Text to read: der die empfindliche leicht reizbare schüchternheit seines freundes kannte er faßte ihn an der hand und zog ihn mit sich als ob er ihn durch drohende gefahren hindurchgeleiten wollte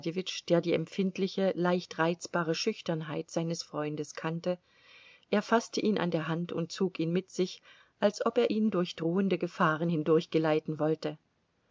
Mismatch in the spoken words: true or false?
false